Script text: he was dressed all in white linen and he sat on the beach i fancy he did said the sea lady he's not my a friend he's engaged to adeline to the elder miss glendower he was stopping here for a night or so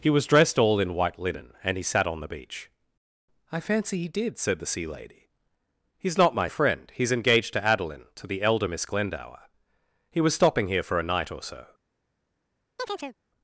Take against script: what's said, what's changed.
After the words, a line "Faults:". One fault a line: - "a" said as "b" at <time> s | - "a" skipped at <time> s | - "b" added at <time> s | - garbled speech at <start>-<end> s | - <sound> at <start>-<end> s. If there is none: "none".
he was dressed all in white linen and he sat on the beach i fancy he did said the sea lady he's not my a friend he's engaged to adeline to the elder miss glendower he was stopping here for a night or so
Faults:
- chirp at 12.8-13.2 s